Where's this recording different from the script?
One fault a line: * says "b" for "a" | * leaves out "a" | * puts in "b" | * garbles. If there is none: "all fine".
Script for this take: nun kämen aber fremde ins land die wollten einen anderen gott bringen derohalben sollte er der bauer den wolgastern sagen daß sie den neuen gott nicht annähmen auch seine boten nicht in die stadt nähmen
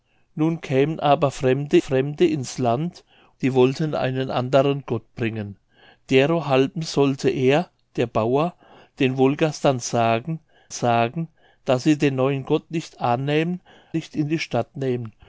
* puts in "fremde"
* puts in "sagen"
* leaves out "auch seine boten"